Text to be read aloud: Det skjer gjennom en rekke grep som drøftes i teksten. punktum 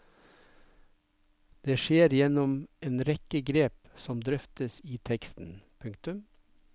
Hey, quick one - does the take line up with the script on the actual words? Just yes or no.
yes